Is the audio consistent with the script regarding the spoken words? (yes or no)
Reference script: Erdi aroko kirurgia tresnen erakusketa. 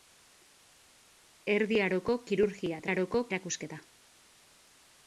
no